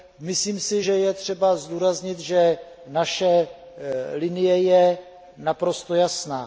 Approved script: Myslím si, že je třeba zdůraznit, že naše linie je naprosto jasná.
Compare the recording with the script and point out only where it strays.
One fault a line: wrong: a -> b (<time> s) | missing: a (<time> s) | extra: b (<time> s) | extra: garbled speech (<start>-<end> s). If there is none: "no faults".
no faults